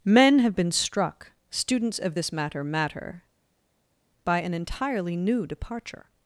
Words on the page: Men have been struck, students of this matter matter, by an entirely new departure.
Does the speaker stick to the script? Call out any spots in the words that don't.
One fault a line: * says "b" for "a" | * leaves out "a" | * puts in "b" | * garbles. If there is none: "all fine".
all fine